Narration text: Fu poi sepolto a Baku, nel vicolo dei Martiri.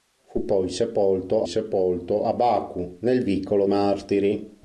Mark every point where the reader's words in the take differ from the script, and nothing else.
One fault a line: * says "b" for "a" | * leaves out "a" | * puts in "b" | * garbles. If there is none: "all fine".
* puts in "sepolto"
* leaves out "dei"